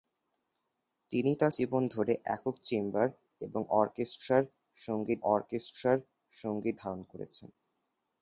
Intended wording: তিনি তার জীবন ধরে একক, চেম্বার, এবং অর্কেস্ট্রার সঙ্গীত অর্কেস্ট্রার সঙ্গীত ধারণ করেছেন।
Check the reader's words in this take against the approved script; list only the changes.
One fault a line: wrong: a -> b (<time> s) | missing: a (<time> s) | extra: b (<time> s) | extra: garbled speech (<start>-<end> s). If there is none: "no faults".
no faults